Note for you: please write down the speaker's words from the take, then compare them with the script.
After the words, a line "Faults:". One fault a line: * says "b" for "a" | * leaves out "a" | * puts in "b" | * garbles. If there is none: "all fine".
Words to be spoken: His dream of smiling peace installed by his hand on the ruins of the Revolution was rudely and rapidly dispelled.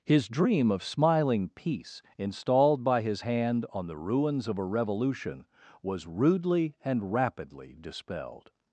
His dream of smiling peace installed by his hand on the ruins of a Revolution was rudely and rapidly dispelled.
Faults:
* says "a" for "the"